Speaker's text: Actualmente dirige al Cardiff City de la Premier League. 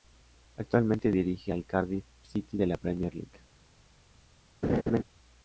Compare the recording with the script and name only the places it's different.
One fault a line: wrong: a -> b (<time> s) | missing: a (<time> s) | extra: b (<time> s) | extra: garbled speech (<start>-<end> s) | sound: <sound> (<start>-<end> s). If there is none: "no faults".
sound: laugh (4.6-5.0 s)